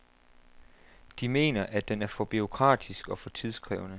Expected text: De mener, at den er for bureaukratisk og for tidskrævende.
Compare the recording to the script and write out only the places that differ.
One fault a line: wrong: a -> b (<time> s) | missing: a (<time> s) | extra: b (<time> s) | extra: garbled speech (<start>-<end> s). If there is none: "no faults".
no faults